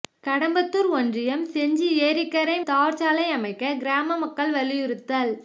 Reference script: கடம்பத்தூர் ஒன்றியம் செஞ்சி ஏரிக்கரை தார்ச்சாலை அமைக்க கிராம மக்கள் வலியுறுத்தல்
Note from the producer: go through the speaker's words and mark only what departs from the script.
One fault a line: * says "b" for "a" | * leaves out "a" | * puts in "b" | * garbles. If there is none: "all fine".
all fine